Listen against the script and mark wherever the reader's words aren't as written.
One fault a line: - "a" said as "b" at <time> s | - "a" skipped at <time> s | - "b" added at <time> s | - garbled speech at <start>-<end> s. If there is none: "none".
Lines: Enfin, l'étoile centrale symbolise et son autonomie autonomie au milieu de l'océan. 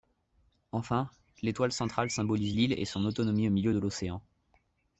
- "l'île" added at 2.5 s
- "autonomie" skipped at 3.5 s